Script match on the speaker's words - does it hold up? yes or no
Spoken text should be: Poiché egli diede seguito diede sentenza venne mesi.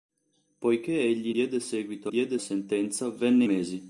yes